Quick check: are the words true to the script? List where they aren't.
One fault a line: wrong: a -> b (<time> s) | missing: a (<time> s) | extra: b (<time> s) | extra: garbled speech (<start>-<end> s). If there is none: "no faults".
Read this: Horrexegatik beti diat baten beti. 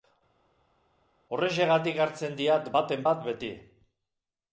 wrong: beti -> hartzen (2.1 s)
extra: bat (3.1 s)